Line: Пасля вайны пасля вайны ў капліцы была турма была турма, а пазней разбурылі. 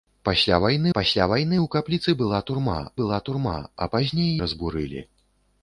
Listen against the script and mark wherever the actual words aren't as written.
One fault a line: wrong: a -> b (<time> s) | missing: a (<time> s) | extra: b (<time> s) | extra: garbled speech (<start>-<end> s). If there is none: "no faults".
no faults